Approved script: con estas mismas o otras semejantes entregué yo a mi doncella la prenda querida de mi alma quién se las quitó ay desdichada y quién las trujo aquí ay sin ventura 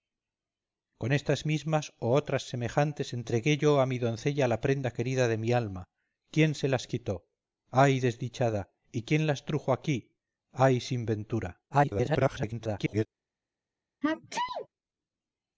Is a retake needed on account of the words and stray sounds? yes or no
yes